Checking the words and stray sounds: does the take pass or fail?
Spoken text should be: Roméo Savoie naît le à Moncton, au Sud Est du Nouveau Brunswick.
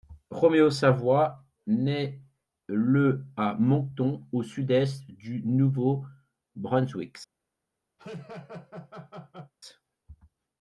fail